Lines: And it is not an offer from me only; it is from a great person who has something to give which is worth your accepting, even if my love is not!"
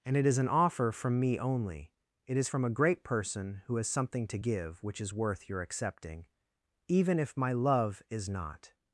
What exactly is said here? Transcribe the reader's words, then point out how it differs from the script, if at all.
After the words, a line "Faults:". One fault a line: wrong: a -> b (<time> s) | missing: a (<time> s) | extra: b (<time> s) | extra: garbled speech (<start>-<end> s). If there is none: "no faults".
And it is an offer from me only; it is from a great person who has something to give which is worth your accepting, even if my love is not!"
Faults:
missing: not (0.4 s)